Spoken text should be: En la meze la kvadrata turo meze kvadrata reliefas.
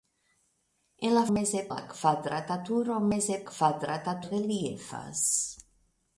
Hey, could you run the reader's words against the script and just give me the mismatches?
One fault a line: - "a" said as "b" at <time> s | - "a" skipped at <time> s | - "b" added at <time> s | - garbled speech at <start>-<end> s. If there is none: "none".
none